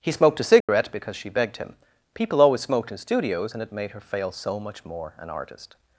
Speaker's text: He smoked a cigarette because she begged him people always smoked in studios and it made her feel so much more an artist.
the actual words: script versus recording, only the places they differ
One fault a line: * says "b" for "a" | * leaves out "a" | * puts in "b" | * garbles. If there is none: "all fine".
* says "fail" for "feel"